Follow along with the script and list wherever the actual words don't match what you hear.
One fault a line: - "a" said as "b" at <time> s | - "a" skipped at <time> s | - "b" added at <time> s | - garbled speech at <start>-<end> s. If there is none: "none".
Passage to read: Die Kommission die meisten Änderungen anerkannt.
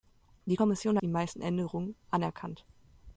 none